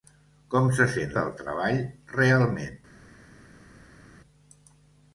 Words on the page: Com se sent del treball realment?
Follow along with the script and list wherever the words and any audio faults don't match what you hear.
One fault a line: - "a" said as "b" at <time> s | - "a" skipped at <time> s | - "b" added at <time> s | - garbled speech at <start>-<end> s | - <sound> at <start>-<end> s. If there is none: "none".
none